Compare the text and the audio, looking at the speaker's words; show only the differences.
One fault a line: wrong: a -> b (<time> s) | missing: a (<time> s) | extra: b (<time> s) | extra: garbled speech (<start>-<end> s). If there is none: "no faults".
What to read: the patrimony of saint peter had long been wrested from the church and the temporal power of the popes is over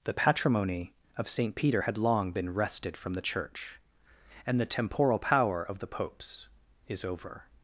no faults